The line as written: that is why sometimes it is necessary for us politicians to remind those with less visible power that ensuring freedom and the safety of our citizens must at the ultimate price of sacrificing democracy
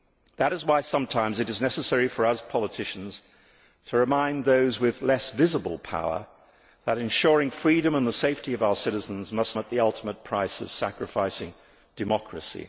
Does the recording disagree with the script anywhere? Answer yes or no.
no